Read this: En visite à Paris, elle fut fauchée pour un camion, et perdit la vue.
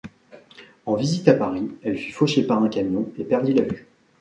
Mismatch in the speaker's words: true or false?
true